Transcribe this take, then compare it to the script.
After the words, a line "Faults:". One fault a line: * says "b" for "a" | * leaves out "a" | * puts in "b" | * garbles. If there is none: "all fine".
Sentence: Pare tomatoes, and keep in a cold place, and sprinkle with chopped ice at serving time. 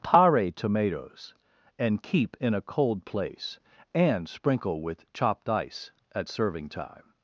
Pare tomatoes, and keep in a cold place, and sprinkle with chopped ice at serving time.
Faults:
all fine